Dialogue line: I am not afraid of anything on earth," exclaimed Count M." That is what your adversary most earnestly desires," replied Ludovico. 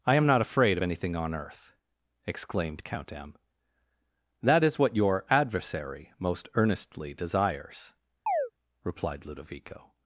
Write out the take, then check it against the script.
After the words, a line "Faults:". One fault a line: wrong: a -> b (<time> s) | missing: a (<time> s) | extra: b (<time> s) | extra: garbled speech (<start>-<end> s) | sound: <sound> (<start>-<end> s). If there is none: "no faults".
I am not afraid of anything on earth," exclaimed Count M." That is what your adversary most earnestly desires," replied Ludovico.
Faults:
sound: chirp (8.3-8.5 s)